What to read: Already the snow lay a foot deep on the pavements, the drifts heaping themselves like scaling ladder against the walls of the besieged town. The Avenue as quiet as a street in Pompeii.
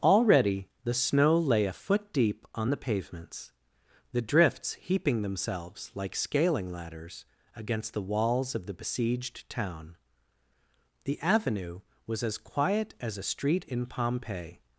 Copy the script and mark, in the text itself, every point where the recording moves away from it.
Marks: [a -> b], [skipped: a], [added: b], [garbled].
Already the snow lay a foot deep on the pavements, the drifts heaping themselves like scaling [ladder -> ladders] against the walls of the besieged town. The Avenue [added: was] as quiet as a street in Pompeii.